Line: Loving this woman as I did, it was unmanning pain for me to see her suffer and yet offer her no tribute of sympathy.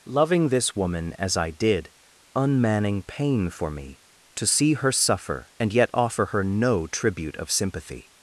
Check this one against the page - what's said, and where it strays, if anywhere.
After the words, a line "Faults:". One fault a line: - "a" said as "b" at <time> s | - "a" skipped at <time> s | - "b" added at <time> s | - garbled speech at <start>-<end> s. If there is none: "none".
Loving this woman as I did, unmanning pain for me to see her suffer and yet offer her no tribute of sympathy.
Faults:
- "it was" skipped at 1.9 s